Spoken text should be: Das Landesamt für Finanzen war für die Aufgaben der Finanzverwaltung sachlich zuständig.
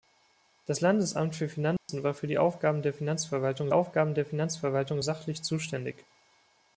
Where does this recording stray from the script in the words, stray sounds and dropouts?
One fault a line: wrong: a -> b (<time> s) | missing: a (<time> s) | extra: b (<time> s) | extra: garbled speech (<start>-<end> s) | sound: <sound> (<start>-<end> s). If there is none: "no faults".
sound: dropout (1.8-1.9 s)
extra: Aufgaben der Finanzverwaltung (3.7 s)